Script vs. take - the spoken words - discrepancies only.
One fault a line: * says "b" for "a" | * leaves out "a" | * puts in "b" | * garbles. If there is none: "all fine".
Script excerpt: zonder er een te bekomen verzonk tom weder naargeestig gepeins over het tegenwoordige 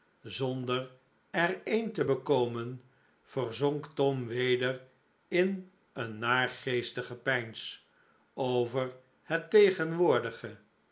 * puts in "in een"